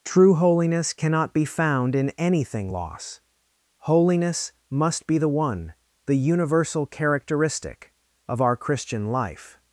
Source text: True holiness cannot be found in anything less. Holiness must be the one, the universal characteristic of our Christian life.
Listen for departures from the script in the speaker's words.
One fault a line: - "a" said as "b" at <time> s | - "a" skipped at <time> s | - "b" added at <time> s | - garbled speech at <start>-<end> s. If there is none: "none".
- "less" said as "loss" at 2.7 s